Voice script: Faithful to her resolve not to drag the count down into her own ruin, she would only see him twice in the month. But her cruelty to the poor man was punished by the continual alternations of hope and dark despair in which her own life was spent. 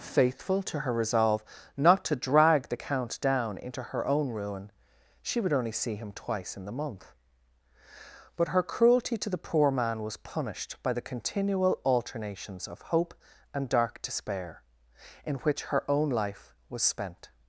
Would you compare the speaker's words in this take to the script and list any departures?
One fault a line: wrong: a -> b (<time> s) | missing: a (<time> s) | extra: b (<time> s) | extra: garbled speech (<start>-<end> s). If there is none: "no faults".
no faults